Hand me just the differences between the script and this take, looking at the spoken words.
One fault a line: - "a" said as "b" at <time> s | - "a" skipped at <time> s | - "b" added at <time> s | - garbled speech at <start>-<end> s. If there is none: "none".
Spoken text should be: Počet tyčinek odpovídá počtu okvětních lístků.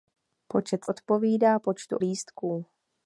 - "tyčinek" skipped at 0.8 s
- "okvětních" skipped at 2.0 s